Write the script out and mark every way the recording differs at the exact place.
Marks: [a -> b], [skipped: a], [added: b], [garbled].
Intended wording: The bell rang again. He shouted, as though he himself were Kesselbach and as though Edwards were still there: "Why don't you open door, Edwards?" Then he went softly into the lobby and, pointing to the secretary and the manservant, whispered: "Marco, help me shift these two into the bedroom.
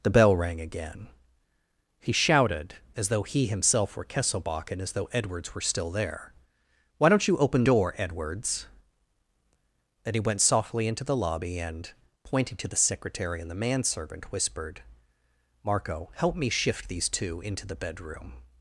The bell rang again. He shouted, as though he himself were Kesselbach and as though Edwards were still there: "Why don't you open door, Edwards?" Then he went softly into the lobby and, pointing to the secretary and the manservant, whispered: "Marco, help me shift these two into the bedroom.